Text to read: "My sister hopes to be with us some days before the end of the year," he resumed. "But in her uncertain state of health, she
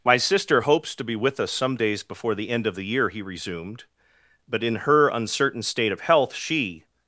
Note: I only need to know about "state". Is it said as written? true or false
true